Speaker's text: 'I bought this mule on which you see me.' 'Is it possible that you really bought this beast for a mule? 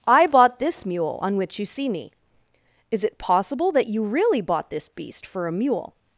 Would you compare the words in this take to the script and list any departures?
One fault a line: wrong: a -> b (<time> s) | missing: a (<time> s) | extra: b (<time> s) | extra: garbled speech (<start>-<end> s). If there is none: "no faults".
no faults